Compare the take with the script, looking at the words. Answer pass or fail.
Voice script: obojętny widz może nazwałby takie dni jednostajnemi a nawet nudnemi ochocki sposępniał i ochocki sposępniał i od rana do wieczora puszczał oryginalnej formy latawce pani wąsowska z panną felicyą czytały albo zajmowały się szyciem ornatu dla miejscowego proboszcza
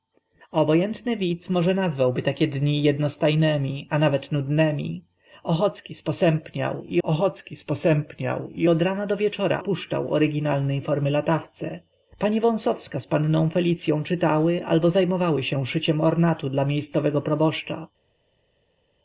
pass